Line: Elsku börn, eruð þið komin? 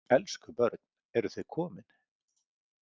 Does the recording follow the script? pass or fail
pass